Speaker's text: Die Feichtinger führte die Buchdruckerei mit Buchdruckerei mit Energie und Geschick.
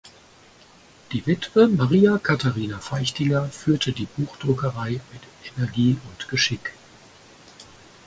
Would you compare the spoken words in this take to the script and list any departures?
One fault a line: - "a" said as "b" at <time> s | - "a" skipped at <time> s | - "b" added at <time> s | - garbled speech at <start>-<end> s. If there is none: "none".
- "Witwe Maria Katharina" added at 1.3 s
- "Buchdruckerei mit" skipped at 5.6 s